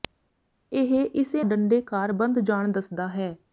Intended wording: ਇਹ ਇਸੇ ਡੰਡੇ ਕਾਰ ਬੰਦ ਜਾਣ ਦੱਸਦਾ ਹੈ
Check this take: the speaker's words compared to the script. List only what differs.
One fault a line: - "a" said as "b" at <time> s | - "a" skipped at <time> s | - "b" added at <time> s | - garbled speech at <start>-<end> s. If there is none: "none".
none